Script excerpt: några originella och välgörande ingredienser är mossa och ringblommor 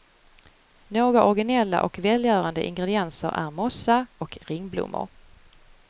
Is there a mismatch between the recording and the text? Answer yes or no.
no